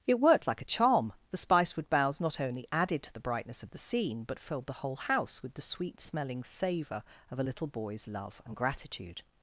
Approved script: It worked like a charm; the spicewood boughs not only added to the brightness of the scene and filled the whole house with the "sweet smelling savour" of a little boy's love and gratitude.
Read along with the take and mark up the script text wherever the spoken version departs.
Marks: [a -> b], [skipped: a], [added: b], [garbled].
It worked like a charm; the spicewood boughs not only added to the brightness of the scene [and -> but] filled the whole house with the "sweet smelling savour" of a little boy's love and gratitude.